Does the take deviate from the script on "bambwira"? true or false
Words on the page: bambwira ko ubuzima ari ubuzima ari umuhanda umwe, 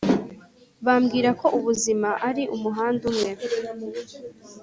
false